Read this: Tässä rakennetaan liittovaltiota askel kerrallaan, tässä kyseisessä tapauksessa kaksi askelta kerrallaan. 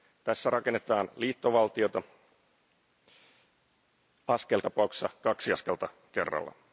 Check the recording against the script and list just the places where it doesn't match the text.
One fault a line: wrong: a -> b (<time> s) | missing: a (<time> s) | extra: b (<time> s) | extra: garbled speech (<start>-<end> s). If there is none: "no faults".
missing: kerrallaan tässä kyseisessä (4.6 s)